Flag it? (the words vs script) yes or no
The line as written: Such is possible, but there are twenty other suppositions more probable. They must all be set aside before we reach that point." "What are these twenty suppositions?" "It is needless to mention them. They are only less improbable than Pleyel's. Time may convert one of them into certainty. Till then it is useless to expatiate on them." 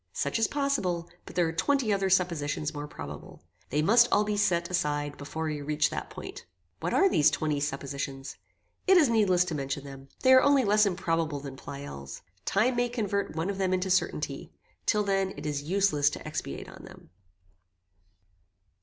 no